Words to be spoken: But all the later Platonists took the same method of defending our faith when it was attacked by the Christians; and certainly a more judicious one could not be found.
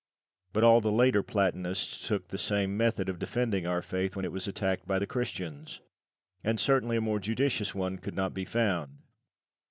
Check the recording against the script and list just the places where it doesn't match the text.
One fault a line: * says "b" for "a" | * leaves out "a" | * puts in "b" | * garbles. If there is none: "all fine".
all fine